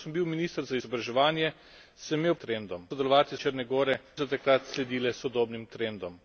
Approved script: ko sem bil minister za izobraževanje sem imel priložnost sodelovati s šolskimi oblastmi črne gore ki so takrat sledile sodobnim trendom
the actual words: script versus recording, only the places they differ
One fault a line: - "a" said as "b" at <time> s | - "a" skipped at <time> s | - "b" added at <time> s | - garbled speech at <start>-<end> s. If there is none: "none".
- "priložnost" said as "trendom" at 2.4 s
- "šolskimi oblastmi" skipped at 3.4 s
- "ki" skipped at 3.9 s